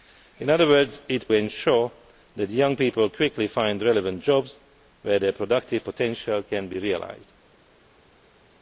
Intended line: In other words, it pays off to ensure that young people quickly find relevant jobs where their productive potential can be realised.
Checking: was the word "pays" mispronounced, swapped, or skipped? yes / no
yes